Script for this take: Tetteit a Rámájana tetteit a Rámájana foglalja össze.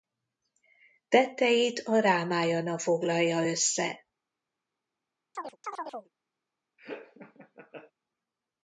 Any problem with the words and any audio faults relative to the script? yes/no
yes